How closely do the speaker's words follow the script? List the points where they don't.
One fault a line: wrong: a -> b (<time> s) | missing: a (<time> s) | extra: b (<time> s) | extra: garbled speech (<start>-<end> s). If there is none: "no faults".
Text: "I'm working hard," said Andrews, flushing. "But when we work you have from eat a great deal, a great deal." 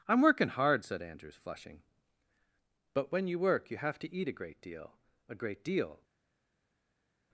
wrong: we -> you (3.3 s)
wrong: from -> to (4.0 s)